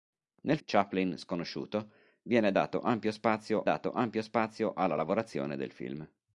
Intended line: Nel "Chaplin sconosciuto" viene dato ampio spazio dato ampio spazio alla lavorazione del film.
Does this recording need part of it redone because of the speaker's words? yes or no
no